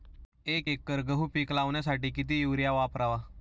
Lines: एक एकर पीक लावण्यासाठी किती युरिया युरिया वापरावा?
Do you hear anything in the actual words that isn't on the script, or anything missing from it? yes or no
yes